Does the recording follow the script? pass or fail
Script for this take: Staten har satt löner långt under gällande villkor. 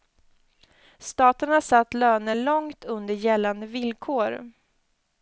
pass